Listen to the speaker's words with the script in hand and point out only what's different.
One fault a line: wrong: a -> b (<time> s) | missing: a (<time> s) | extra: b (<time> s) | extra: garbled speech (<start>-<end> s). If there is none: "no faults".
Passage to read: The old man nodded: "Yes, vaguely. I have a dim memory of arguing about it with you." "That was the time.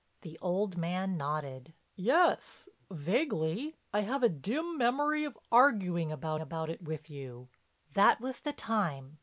extra: about (6.4 s)